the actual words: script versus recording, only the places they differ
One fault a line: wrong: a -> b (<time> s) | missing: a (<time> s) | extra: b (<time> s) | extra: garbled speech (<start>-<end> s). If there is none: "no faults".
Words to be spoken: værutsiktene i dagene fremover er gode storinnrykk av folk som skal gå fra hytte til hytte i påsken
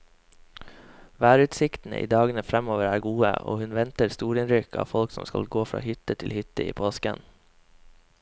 extra: og hun venter (3.3 s)